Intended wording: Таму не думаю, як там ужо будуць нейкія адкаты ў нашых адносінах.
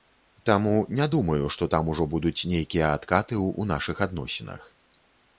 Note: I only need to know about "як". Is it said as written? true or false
false